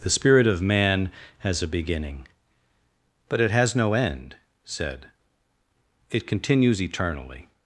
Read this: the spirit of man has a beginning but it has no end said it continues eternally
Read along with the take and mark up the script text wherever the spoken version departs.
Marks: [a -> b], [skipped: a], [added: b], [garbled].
the spirit of man has a beginning but it has no end said it continues eternally